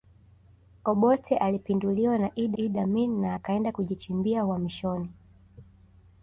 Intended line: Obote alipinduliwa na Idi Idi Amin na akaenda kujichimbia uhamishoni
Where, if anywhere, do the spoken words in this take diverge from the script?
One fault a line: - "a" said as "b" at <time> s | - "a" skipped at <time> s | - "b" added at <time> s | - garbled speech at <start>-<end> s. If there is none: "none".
none